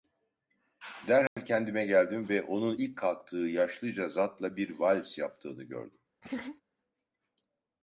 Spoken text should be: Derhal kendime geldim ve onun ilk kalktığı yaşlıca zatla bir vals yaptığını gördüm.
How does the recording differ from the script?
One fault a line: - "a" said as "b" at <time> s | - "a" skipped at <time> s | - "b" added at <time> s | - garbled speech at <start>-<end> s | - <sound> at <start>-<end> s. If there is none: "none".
- dropout at 1.3-1.4 s
- laugh at 6.2-6.6 s